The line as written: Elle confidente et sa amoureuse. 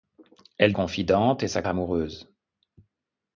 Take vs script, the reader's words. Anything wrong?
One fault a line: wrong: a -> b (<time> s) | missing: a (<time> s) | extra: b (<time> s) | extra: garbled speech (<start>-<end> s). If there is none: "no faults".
no faults